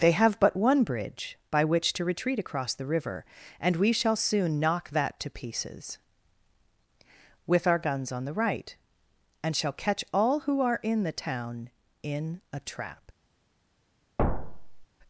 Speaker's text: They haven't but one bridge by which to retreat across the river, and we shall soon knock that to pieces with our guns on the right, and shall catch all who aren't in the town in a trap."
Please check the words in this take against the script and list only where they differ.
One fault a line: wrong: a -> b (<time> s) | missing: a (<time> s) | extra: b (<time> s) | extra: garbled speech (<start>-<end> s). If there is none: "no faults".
wrong: haven't -> have (0.1 s)
wrong: aren't -> are (10.6 s)